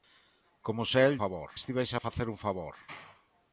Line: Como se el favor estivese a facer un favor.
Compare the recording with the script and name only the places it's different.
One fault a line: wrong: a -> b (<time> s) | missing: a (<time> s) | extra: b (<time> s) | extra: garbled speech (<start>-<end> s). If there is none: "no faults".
no faults